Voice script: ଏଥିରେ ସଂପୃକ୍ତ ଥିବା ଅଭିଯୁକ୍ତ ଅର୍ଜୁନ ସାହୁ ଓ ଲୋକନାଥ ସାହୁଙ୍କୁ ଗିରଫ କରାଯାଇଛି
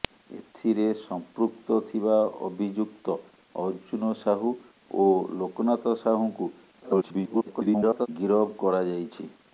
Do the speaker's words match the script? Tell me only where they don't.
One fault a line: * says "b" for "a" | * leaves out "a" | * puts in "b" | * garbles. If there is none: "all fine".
* garbles